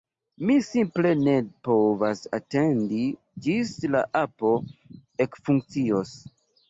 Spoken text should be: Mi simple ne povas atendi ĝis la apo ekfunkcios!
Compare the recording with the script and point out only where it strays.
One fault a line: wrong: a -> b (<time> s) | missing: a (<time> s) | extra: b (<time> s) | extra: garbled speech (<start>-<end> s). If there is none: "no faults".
no faults